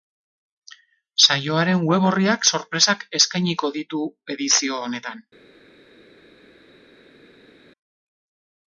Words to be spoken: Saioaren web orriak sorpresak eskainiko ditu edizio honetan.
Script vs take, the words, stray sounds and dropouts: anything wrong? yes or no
no